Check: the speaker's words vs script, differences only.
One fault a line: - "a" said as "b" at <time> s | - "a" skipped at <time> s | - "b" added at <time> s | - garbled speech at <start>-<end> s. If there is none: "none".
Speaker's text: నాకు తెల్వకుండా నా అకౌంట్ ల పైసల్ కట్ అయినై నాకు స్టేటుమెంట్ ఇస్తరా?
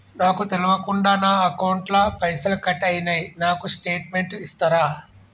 none